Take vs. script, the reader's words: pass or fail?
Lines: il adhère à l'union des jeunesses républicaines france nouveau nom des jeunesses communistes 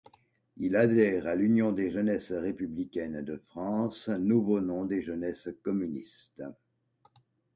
fail